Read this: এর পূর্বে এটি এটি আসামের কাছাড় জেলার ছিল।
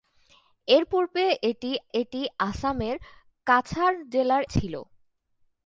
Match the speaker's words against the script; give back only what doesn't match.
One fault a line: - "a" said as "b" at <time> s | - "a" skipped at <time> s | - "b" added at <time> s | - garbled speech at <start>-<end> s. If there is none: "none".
none